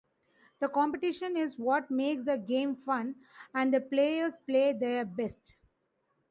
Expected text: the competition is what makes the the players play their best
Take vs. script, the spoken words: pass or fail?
fail